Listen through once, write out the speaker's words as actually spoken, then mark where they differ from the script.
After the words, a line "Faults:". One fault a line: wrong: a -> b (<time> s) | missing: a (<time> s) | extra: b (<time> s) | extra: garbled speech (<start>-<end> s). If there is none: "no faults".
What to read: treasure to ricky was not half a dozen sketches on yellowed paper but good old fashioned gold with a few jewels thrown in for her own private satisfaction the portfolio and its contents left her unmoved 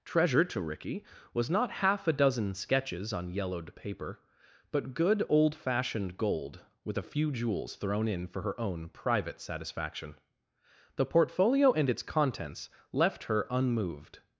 treasure to ricky was not half a dozen sketches on yellowed paper but good old fashioned gold with a few jewels thrown in for her own private satisfaction the portfolio and its contents left her unmoved
Faults:
no faults